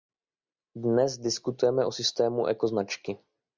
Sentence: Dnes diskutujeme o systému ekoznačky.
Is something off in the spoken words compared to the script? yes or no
no